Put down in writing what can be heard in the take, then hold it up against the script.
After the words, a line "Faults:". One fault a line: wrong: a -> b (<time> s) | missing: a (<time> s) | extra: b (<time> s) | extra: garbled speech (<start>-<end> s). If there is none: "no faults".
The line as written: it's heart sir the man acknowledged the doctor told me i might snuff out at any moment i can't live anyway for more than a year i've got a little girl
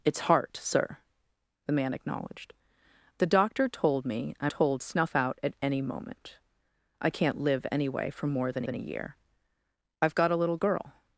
it's heart sir the man acknowledged the doctor told me i told snuff out at any moment i can't live anyway for more than than a year i've got a little girl
Faults:
wrong: might -> told (4.5 s)
extra: than (8.6 s)